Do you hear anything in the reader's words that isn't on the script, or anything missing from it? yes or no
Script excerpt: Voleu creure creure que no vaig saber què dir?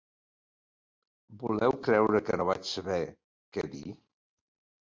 yes